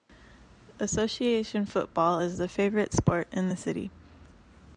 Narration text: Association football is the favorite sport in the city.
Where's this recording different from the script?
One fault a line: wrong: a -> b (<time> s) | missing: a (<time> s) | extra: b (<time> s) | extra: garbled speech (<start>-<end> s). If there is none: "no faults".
no faults